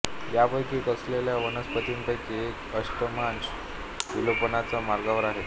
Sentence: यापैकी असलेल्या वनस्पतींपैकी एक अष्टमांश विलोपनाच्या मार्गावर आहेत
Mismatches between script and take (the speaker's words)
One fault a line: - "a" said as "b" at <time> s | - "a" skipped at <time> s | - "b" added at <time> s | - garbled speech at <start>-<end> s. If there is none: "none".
none